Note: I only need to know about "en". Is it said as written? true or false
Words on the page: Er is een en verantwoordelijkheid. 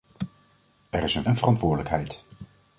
true